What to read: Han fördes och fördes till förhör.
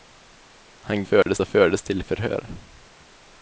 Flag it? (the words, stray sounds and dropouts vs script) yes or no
yes